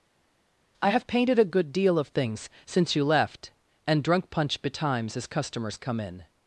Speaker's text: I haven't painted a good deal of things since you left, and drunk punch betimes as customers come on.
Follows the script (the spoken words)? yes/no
no